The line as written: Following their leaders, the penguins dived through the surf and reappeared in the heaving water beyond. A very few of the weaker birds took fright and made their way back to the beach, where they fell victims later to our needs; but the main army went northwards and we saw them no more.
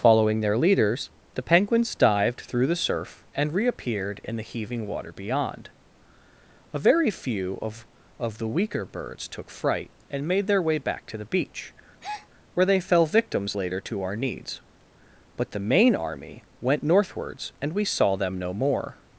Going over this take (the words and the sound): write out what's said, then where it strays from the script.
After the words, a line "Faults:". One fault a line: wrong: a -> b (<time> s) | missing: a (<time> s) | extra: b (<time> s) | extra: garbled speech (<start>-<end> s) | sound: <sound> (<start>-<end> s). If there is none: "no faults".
Following their leaders, the penguins dived through the surf and reappeared in the heaving water beyond. A very few of of the weaker birds took fright and made their way back to the beach, where they fell victims later to our needs; but the main army went northwards and we saw them no more.
Faults:
extra: of (8.2 s)
sound: breath (12.0-12.3 s)